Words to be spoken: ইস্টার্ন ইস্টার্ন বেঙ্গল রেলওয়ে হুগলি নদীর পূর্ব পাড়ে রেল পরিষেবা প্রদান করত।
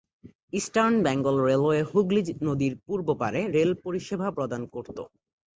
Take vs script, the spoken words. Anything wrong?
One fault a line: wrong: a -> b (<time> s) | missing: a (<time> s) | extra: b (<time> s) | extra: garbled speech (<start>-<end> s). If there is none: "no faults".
missing: ইস্টার্ন (0.9 s)